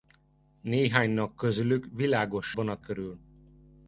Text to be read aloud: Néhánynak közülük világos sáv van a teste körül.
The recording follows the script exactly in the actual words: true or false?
false